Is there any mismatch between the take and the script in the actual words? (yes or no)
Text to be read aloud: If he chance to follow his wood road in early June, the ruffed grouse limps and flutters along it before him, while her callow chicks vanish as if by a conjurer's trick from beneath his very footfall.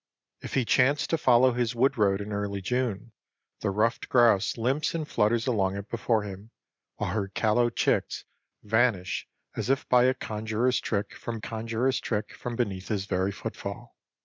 yes